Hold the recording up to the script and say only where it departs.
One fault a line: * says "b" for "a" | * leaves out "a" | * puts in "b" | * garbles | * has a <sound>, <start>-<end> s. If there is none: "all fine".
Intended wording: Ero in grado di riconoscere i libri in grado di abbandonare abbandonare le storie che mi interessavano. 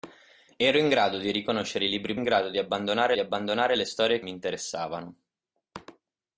all fine